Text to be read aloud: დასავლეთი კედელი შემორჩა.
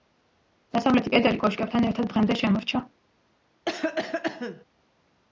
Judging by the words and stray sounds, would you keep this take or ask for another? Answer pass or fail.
fail